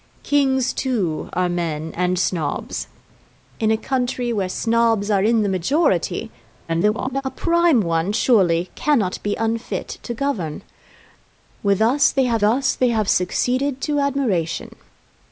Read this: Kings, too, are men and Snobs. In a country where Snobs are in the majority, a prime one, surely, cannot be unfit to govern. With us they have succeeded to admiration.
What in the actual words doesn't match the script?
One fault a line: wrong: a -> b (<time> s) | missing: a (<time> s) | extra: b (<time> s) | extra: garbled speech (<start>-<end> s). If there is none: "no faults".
extra: garbled speech (6.7-7.2 s)
extra: us they have (12.4 s)